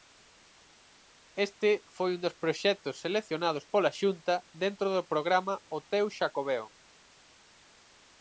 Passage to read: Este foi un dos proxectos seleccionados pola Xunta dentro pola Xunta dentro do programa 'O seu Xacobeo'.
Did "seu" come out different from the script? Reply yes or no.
yes